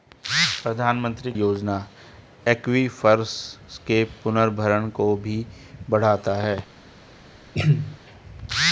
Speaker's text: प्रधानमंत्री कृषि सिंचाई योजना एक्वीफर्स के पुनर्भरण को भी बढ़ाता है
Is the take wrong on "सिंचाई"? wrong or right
wrong